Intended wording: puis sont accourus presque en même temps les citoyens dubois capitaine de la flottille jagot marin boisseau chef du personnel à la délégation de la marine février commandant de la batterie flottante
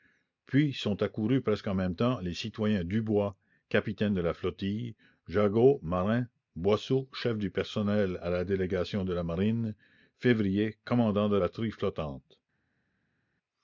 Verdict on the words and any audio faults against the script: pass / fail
fail